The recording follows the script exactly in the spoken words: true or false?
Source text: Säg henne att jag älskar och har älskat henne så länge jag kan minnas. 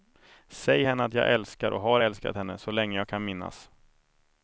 true